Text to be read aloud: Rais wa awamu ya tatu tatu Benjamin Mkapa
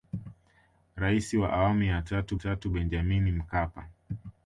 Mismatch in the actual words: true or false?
false